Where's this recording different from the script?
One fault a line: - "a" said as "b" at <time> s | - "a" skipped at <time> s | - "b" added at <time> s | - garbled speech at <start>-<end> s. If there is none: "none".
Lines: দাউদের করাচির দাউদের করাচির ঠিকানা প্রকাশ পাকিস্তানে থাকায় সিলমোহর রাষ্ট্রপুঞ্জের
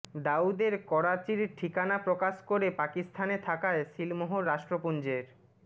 - "দাউদের করাচির" skipped at 1.4 s
- "করে" added at 2.5 s